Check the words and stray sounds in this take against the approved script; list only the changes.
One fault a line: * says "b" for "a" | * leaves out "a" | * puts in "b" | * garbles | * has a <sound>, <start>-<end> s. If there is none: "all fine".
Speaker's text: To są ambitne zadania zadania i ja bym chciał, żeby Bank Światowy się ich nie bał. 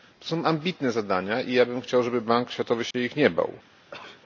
* leaves out "zadania"
* has a dropout, 2.9-2.9 s
* has a sneeze, 3.9-4.2 s